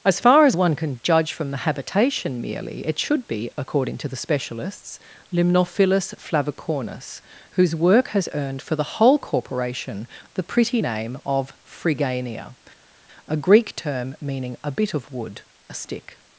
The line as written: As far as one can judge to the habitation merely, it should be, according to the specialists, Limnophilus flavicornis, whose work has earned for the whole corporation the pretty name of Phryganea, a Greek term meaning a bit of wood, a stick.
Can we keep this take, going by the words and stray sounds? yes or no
no